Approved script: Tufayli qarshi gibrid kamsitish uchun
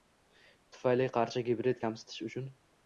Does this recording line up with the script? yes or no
yes